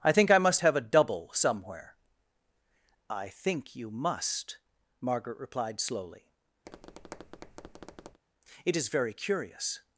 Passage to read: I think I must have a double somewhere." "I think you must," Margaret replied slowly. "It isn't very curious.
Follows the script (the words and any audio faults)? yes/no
no